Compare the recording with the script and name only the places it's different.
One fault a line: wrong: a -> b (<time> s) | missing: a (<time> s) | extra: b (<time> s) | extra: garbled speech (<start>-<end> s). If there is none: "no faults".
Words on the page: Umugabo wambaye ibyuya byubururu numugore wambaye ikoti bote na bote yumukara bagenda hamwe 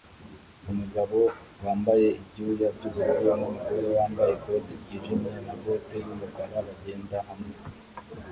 wrong: bote -> ryijimye (4.8 s)